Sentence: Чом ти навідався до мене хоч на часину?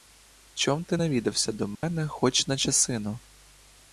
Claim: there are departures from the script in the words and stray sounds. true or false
true